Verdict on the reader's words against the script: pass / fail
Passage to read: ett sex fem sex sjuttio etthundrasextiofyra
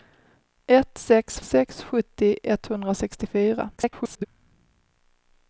fail